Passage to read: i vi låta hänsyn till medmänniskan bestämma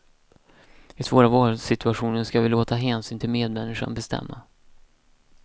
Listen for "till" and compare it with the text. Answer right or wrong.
right